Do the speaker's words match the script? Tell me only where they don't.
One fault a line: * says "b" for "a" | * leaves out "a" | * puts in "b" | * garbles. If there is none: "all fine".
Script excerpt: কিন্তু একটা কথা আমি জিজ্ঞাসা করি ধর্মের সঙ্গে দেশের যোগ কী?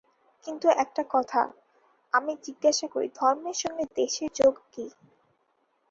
all fine